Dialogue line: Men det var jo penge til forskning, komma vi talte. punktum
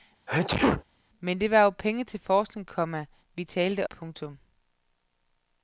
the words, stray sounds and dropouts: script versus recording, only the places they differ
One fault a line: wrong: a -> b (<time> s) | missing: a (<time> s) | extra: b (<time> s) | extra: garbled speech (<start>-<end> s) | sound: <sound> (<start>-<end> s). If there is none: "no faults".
sound: sneeze (0.3-0.8 s)